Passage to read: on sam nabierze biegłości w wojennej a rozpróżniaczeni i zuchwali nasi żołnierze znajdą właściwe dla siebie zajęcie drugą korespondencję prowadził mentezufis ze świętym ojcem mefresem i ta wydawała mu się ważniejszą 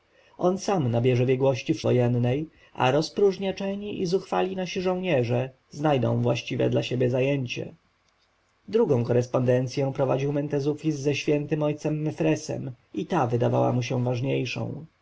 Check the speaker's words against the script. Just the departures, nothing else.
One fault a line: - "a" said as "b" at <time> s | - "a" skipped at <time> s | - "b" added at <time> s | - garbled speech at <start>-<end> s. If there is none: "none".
none